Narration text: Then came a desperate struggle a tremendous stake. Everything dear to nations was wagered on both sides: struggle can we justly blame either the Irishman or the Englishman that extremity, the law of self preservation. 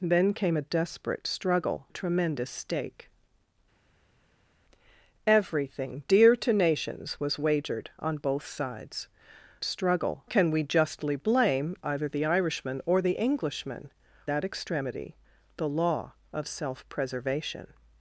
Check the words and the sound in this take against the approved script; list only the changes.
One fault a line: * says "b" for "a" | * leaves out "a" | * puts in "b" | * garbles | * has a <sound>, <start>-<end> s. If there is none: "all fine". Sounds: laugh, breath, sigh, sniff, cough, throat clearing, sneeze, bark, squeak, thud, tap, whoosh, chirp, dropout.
all fine